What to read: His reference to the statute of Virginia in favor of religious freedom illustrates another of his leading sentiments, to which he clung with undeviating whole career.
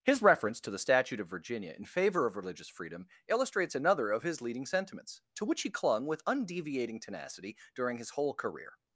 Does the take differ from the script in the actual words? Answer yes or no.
yes